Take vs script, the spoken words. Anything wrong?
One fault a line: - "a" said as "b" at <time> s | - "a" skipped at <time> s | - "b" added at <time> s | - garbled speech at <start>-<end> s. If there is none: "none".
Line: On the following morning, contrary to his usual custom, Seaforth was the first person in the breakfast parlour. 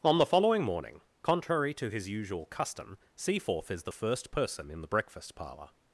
- "was" said as "is" at 3.7 s